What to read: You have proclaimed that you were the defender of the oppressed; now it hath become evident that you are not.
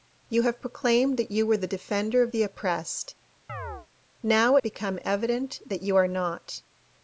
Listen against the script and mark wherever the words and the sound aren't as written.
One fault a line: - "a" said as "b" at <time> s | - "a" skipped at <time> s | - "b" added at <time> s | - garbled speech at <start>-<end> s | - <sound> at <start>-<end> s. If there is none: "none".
- chirp at 3.5-3.9 s
- "it hath" skipped at 4.6 s